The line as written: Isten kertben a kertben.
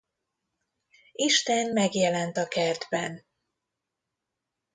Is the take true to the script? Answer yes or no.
no